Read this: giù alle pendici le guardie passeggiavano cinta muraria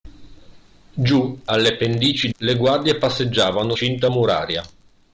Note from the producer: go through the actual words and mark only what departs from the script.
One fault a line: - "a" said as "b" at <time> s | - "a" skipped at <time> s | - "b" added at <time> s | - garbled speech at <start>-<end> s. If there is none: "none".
none